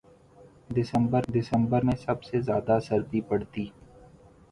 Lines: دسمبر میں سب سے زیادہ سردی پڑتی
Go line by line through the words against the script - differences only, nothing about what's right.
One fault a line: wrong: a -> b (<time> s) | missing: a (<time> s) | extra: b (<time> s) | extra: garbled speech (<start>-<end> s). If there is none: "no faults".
extra: دسمبر (1.3 s)